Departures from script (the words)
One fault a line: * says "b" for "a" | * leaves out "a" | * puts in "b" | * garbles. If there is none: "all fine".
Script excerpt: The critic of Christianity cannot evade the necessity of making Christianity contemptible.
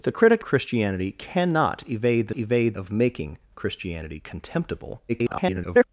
* leaves out "of"
* says "evade" for "necessity"
* garbles